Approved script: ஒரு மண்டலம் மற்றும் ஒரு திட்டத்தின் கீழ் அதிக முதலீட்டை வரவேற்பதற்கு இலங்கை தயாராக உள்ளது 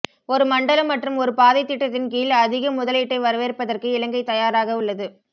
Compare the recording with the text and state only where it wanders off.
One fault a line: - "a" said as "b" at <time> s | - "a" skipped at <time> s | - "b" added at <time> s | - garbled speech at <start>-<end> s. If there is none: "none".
- "பாதை" added at 1.4 s